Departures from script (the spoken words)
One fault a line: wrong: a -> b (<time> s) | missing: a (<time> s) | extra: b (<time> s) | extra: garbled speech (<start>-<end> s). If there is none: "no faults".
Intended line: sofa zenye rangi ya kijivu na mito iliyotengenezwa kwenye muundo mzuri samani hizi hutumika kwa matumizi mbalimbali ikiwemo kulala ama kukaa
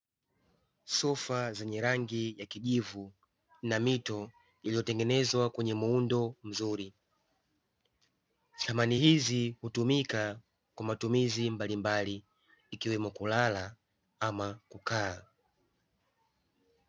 no faults